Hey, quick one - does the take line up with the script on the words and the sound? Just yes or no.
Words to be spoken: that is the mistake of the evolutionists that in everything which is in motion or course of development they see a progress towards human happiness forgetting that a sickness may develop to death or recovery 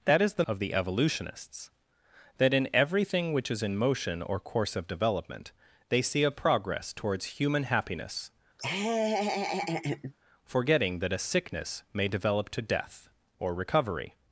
no